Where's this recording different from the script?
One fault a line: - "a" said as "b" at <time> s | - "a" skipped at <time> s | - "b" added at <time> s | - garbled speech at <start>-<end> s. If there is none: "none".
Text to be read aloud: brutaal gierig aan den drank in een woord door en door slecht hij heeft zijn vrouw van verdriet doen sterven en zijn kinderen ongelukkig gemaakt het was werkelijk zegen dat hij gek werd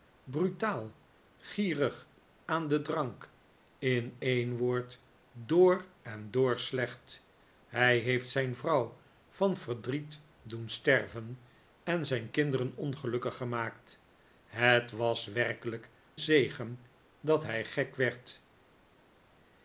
none